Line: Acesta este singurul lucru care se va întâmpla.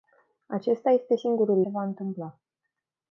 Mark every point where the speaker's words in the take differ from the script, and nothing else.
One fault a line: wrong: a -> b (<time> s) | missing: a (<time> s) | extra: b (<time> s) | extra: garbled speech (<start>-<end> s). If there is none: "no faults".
missing: lucru care (1.6 s)